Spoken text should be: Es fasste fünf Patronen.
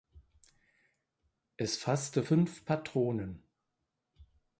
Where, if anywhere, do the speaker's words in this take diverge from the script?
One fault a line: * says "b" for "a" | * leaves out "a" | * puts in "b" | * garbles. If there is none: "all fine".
all fine